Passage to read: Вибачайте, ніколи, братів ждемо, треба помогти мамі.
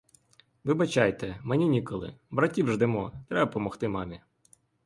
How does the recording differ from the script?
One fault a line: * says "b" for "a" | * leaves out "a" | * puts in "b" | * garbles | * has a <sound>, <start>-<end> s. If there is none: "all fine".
* puts in "мені"